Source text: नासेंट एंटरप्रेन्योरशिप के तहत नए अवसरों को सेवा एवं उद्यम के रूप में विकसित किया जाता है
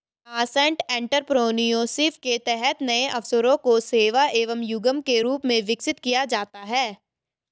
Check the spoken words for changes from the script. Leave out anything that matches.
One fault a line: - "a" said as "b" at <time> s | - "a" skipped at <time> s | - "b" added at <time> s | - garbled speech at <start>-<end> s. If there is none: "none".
none